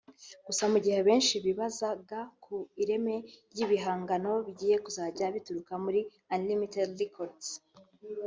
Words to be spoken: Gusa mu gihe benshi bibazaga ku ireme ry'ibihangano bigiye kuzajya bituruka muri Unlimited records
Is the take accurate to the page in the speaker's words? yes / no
yes